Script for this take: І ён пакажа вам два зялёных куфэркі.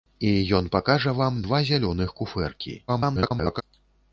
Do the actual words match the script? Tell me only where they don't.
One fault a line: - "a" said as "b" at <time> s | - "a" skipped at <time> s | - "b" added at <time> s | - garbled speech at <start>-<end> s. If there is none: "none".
- garbled speech at 2.9-3.6 s